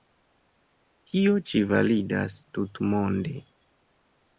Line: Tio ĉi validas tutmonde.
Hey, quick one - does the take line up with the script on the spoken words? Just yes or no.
yes